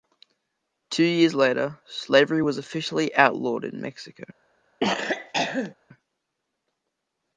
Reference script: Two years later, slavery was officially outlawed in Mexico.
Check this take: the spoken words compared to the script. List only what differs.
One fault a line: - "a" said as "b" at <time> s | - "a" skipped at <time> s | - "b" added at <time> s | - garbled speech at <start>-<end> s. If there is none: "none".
none